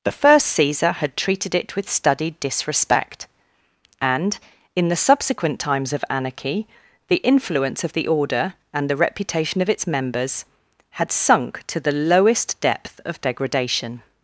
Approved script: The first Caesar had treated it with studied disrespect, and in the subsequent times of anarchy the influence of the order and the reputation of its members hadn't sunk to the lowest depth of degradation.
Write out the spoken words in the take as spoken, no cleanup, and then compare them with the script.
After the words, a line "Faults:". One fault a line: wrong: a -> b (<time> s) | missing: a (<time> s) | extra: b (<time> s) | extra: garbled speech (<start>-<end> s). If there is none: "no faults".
The first Caesar had treated it with studied disrespect, and in the subsequent times of anarchy the influence of the order and the reputation of its members had sunk to the lowest depth of degradation.
Faults:
wrong: hadn't -> had (10.9 s)